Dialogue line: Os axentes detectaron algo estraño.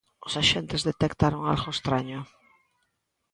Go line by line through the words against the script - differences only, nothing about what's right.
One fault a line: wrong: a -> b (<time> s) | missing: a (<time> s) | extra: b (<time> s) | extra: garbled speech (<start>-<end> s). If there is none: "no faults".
no faults